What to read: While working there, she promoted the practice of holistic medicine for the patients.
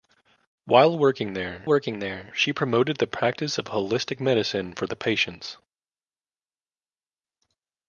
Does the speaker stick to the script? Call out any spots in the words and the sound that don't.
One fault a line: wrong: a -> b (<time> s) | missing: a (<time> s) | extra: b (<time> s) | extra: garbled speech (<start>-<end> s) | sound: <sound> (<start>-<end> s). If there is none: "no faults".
extra: working there (1.7 s)